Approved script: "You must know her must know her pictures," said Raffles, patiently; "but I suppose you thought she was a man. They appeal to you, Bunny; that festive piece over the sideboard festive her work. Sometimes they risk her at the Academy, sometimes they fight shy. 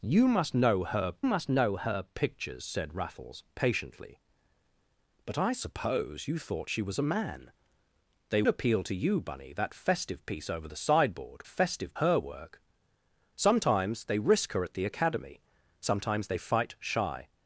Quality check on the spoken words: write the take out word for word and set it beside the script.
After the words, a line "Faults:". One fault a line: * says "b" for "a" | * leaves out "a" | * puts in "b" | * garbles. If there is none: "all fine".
"You must know her must know her pictures," said Raffles, patiently; "but I suppose you thought she was a man. They appeal to you, Bunny; that festive piece over the sideboard festive her work. Sometimes they risk her at the Academy, sometimes they fight shy.
Faults:
all fine